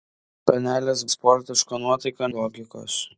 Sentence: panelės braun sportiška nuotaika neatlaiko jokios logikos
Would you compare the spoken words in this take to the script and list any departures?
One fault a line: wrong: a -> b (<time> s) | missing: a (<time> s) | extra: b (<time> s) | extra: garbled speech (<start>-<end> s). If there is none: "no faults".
missing: braun (1.0 s)
missing: neatlaiko jokios (2.3 s)